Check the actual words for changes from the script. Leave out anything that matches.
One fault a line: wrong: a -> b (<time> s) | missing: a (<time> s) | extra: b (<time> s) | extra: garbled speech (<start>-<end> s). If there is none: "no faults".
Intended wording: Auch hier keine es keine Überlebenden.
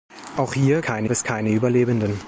no faults